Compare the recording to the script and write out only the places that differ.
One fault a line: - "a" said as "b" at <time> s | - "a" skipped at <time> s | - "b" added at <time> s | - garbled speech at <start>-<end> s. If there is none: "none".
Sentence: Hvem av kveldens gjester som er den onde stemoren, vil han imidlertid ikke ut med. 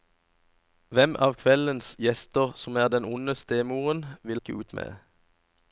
- "han imidlertid" skipped at 4.4 s